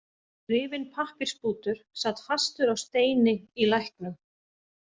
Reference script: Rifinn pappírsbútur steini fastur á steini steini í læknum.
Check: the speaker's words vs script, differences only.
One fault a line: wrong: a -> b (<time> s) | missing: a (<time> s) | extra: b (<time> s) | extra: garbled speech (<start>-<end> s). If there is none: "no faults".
wrong: steini -> sat (2.0 s)
missing: steini (3.4 s)